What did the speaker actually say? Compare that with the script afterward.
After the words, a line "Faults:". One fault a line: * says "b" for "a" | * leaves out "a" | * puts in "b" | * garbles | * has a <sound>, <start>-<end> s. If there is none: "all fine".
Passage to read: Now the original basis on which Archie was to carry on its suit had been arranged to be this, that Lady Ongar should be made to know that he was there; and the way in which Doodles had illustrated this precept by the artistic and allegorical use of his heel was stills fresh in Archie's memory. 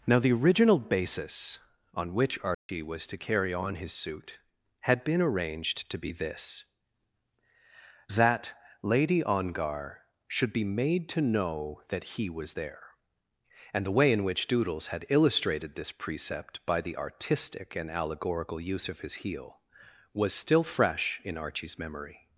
Now the original basis on which Archie was to carry on his suit had been arranged to be this, that Lady Ongar should be made to know that he was there; and the way in which Doodles had illustrated this precept by the artistic and allegorical use of his heel was still fresh in Archie's memory.
Faults:
* has a dropout, 2.5-2.7 s
* says "his" for "its"
* says "still" for "stills"